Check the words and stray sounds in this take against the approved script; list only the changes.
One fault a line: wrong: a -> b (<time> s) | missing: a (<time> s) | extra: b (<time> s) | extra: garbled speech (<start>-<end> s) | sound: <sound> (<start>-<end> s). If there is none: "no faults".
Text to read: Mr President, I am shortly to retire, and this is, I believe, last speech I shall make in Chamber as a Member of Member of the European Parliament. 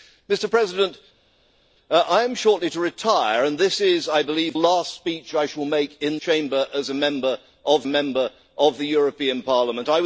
no faults